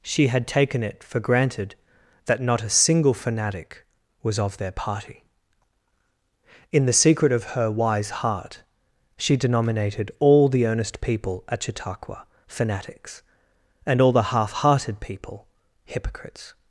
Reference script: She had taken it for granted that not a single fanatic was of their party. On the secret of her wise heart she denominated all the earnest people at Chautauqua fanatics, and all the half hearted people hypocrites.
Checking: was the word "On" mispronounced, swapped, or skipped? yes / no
yes